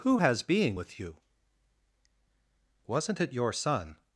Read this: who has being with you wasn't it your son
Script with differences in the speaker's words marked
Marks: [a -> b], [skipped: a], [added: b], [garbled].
who has being with you wasn't it your son